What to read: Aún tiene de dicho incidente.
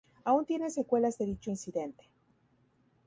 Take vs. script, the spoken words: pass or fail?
fail